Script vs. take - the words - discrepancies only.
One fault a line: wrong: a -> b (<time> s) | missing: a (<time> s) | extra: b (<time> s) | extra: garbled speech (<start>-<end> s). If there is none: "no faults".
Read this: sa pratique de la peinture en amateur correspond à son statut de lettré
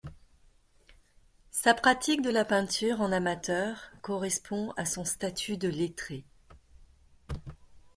no faults